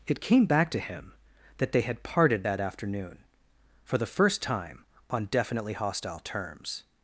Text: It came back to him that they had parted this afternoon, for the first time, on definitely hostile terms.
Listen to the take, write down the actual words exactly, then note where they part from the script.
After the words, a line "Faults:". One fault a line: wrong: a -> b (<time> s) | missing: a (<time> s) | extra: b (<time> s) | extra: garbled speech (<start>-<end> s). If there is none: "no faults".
It came back to him that they had parted that afternoon, for the first time, on definitely hostile terms.
Faults:
wrong: this -> that (2.4 s)